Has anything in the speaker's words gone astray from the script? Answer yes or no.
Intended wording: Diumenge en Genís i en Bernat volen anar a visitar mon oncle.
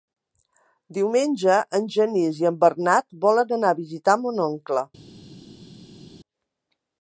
no